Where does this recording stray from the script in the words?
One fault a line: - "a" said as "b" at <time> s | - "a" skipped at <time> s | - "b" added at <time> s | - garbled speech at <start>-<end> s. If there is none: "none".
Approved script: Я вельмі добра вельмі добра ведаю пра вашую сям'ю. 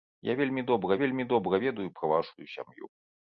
none